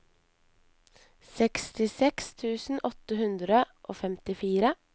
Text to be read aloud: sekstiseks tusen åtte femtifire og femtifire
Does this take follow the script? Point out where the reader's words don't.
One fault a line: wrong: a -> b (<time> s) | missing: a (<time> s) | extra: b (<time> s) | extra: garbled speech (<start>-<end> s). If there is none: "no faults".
wrong: femtifire -> hundre (3.2 s)